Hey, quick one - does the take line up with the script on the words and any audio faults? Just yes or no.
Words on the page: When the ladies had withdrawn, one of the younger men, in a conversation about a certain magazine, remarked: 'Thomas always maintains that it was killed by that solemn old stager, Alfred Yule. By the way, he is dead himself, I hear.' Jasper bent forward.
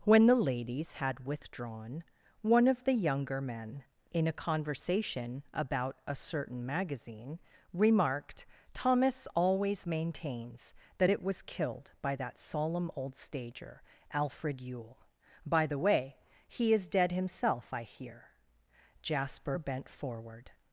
yes